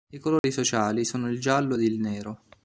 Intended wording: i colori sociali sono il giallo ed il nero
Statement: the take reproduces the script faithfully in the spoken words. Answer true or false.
true